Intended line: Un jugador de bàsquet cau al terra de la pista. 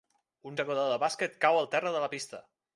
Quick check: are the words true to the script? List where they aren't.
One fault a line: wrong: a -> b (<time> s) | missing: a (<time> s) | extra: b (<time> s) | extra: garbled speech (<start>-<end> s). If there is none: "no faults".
no faults